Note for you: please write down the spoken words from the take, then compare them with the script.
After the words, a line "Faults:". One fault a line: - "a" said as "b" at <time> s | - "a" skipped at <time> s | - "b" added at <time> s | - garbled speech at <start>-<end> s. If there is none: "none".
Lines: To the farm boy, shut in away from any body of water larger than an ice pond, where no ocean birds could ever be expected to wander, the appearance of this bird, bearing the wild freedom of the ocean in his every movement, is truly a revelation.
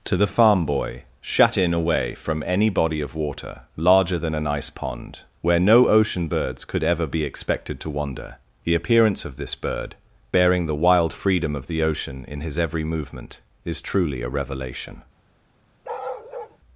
To the farm boy, shut in away from any body of water larger than an ice pond, where no ocean birds could ever be expected to wander, the appearance of this bird, bearing the wild freedom of the ocean in his every movement, is truly a revelation.
Faults:
none